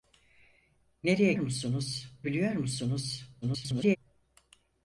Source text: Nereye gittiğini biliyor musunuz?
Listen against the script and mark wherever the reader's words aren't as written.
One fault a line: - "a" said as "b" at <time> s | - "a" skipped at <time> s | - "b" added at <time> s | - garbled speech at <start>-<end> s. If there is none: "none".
- "gittiğini" said as "musunuz" at 1.3 s
- garbled speech at 3.4-4.0 s